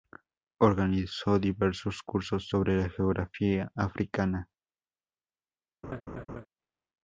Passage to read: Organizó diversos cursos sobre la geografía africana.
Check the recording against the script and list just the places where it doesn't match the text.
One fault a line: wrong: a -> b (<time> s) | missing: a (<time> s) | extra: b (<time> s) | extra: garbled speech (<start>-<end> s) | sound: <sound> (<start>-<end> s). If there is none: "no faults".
sound: laugh (5.8-6.5 s)